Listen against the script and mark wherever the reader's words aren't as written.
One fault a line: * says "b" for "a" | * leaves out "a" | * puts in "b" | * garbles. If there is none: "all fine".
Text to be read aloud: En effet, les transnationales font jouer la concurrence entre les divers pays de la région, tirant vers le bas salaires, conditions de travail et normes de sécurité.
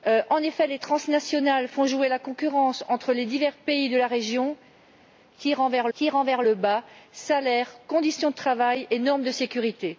* puts in "tirant vers"